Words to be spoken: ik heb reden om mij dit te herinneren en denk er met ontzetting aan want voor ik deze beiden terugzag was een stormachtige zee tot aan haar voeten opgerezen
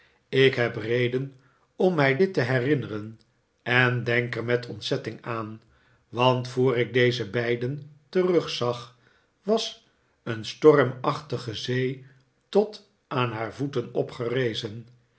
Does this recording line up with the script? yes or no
yes